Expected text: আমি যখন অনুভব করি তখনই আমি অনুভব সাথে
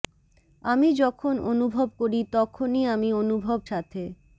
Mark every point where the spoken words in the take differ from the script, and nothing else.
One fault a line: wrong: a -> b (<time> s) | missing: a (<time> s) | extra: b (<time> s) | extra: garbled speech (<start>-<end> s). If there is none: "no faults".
no faults